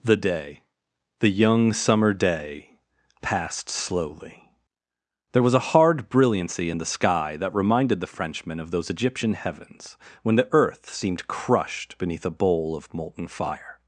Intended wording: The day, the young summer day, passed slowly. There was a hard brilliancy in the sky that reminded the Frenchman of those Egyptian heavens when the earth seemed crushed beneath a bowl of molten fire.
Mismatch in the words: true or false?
false